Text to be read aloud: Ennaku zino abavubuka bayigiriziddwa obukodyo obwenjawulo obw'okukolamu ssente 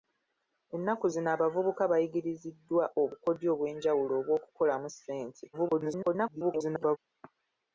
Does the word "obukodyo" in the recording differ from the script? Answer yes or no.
no